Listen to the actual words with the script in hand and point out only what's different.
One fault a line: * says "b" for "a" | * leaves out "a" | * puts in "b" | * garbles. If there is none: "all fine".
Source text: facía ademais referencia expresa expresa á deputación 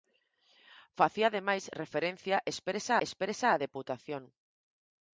all fine